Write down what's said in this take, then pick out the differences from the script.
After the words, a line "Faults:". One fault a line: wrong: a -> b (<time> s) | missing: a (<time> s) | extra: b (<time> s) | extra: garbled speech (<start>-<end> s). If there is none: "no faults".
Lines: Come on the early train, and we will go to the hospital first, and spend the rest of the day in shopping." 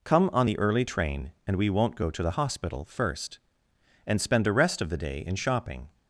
Come on the early train, and we won't go to the hospital first, and spend the rest of the day in shopping."
Faults:
wrong: will -> won't (1.7 s)